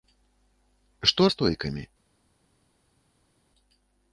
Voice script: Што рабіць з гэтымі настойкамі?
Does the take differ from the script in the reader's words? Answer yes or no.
yes